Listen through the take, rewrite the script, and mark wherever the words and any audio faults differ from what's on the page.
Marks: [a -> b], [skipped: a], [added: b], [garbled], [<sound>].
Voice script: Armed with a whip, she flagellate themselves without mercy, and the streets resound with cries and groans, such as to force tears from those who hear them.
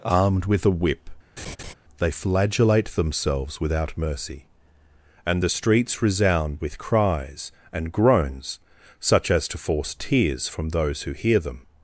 Armed with a whip, [laugh] [she -> they] flagellate themselves without mercy, and the streets resound with cries and groans, such as to force tears from those who hear them.